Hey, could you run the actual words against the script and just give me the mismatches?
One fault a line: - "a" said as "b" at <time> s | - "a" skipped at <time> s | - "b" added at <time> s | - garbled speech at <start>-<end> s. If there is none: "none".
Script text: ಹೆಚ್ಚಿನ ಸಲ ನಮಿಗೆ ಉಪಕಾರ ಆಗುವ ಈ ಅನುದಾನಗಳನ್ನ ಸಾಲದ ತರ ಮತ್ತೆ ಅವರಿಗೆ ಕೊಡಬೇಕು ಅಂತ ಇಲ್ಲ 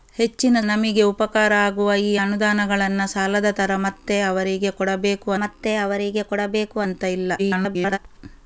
- "ಸಲ" skipped at 0.6 s
- "ಮತ್ತೆ ಅವರಿಗೆ ಕೊಡಬೇಕು" added at 5.4 s
- garbled speech at 7.4-8.0 s